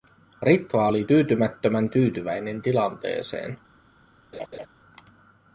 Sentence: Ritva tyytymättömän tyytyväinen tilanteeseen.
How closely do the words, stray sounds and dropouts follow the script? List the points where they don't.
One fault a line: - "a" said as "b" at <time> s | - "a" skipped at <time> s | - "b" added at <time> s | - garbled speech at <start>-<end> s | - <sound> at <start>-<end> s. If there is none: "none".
- "oli" added at 0.8 s
- laugh at 4.3-4.7 s